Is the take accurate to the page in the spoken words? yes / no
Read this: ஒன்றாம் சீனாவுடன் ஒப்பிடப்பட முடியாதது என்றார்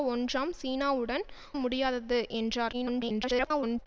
no